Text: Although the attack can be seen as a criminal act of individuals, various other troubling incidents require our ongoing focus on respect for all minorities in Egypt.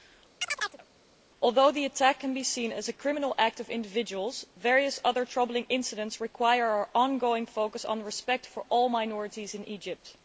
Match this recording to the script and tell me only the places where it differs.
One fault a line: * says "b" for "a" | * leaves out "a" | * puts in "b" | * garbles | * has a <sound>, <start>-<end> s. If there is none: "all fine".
* has a chirp, 0.4-0.9 s